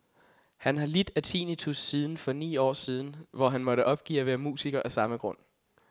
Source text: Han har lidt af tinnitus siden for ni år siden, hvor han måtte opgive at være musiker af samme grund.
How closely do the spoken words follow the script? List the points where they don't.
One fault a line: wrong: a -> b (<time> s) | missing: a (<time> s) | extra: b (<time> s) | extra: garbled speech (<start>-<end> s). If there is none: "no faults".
no faults